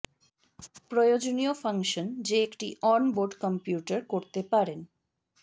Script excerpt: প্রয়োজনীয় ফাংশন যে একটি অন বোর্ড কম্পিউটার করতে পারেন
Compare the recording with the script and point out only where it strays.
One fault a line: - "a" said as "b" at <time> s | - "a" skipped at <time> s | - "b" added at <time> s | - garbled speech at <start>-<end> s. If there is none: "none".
none